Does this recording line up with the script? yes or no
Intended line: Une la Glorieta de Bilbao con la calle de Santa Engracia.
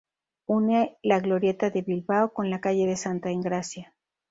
yes